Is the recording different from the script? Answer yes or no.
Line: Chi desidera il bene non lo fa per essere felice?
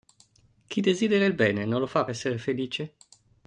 yes